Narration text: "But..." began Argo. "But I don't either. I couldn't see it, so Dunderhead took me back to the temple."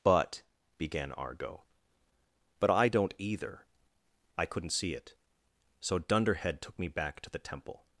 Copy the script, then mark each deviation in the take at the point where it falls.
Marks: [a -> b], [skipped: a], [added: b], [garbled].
"But..." began Argo. "But I don't either. I couldn't see it, so Dunderhead took me back to the temple."